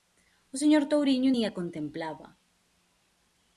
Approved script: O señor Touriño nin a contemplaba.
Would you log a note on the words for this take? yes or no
no